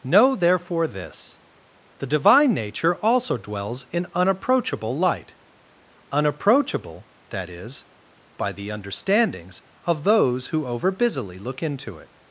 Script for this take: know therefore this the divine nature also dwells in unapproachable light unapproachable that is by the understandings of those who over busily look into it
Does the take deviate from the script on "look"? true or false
false